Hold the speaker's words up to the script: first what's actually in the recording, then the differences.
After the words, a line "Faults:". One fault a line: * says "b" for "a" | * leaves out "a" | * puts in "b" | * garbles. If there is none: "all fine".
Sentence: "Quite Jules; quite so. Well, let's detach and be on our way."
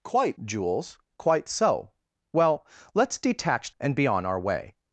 "Quite Jules; quite so. Well, let's detach and be on our way."
Faults:
all fine